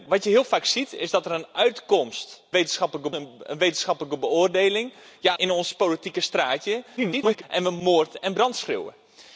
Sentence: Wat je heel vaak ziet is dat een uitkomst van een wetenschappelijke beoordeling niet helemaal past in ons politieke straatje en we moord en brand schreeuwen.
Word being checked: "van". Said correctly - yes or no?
no